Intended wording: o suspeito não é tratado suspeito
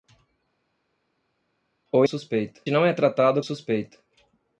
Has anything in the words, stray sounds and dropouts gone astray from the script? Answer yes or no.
no